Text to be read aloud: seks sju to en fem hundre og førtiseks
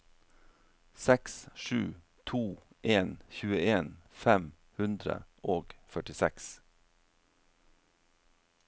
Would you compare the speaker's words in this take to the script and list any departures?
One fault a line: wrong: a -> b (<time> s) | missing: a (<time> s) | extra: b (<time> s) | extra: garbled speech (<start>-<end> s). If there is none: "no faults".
extra: tjueen (3.4 s)